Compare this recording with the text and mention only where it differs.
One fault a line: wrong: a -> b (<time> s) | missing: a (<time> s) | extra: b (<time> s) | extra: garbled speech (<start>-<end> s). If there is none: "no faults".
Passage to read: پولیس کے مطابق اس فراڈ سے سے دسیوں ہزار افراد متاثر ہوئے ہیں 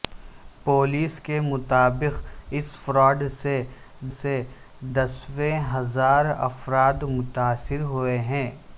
no faults